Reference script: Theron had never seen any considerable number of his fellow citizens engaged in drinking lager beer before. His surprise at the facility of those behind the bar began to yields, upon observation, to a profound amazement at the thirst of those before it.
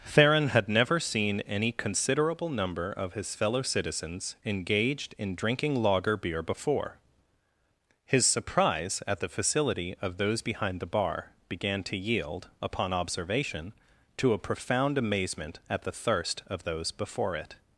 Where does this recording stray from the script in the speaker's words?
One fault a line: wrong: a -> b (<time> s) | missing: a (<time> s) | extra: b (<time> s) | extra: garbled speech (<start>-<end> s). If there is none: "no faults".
wrong: yields -> yield (12.0 s)